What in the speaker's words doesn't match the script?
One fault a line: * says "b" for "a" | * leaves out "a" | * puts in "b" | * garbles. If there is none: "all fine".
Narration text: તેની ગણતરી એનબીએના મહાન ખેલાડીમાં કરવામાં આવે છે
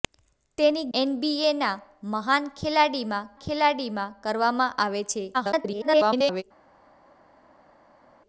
* leaves out "ગણતરી"
* puts in "ખેલાડીમાં"
* garbles